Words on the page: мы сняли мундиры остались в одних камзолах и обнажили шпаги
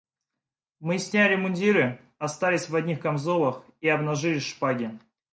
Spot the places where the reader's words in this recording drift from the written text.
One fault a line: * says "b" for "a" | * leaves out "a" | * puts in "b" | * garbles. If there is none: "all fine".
all fine